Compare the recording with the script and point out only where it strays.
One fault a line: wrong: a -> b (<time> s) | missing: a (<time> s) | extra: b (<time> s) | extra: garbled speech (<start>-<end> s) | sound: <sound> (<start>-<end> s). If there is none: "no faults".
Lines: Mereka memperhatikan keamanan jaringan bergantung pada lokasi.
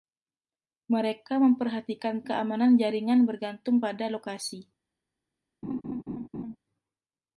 sound: laugh (5.6-6.6 s)